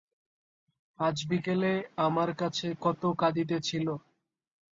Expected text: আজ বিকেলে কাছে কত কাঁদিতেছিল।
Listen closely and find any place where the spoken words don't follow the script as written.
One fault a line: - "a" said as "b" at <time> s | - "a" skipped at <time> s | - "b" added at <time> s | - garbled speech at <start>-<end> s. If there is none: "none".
- "আমার" added at 2.1 s